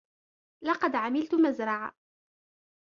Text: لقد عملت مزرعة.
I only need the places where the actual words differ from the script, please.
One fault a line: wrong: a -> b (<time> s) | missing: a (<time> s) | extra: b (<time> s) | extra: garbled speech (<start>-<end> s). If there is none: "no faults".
no faults